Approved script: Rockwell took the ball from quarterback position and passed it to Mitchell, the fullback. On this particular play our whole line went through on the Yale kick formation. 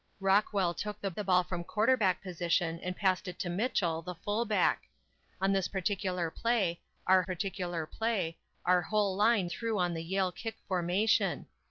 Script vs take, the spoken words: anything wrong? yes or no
yes